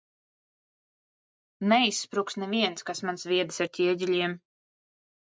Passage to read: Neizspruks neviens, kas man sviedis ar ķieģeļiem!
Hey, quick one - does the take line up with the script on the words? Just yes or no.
yes